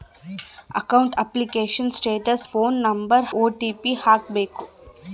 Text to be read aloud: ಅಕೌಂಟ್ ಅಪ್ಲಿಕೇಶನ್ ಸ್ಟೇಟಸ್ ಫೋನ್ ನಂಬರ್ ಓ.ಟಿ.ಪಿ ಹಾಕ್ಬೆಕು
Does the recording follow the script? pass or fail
pass